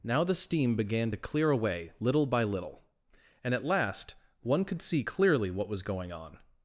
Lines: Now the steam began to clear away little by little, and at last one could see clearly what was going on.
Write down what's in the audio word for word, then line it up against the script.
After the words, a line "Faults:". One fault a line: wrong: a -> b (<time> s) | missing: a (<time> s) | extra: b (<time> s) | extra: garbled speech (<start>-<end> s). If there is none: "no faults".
Now the steam began to clear away little by little, and at last one could see clearly what was going on.
Faults:
no faults